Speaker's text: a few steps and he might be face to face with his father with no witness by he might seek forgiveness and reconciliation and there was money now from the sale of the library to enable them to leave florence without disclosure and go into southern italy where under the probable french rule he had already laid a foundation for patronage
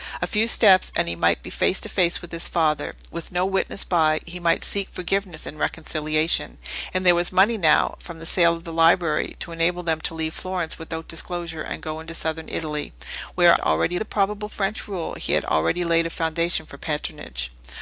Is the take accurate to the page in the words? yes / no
no